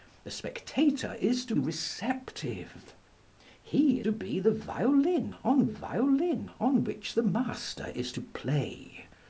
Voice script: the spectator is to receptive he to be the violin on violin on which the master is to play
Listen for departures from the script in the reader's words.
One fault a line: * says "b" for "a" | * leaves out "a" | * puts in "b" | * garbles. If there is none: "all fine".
all fine